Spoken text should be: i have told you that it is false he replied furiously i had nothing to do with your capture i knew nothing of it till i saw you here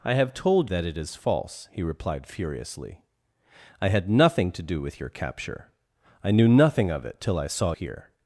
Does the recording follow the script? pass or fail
fail